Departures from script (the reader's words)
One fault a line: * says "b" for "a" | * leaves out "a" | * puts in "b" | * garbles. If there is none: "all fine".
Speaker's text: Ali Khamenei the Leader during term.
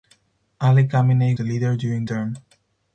all fine